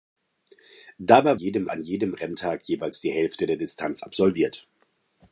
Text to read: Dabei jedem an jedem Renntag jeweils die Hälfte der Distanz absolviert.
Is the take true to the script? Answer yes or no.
yes